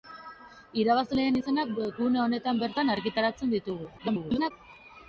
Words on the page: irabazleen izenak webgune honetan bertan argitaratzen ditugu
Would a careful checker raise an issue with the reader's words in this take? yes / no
yes